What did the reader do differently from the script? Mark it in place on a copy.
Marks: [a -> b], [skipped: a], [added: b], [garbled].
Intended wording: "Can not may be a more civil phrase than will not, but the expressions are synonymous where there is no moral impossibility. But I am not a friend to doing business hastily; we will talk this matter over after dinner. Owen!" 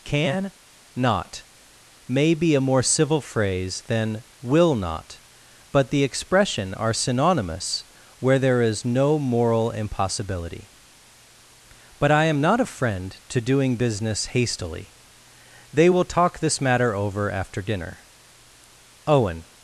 "Can not may be a more civil phrase than will not, but the [expressions -> expression] are synonymous where there is no moral impossibility. But I am not a friend to doing business hastily; [we -> they] will talk this matter over after dinner. Owen!"